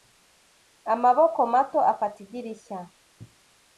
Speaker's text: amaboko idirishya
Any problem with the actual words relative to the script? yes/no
yes